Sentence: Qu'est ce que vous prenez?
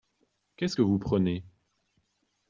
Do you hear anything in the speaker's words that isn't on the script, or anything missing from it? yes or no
no